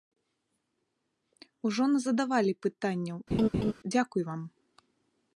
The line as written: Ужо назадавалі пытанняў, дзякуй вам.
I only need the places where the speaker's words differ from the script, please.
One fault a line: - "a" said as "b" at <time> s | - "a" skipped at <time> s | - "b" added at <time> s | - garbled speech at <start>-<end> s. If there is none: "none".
none